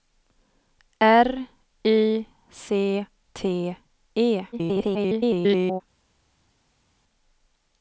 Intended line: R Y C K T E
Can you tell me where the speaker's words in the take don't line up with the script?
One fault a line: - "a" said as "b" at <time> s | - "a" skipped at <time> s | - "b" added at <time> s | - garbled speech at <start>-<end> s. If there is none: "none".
- "K" skipped at 3.0 s
- garbled speech at 4.5-5.8 s